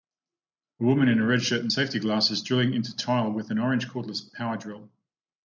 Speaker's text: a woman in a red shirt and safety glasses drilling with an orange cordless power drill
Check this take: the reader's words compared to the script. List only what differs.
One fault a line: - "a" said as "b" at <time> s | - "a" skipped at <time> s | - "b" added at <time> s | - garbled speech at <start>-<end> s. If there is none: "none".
- "into tile" added at 2.7 s